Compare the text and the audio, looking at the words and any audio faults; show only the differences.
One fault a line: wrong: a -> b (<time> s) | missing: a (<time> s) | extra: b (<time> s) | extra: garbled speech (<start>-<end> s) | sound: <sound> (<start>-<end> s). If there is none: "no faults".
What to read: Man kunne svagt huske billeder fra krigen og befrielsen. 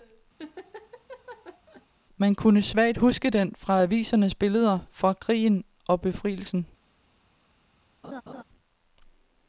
sound: laugh (0.4-1.9 s)
extra: den fra avisernes (3.3 s)
sound: laugh (8.0-8.4 s)